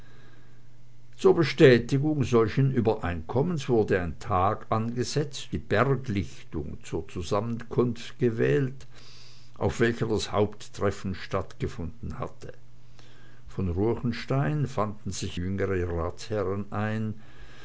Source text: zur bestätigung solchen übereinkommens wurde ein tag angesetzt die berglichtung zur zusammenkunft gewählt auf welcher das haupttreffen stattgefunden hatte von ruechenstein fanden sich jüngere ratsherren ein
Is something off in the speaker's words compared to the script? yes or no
no